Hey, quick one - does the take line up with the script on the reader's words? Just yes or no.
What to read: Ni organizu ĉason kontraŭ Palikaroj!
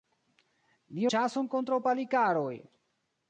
no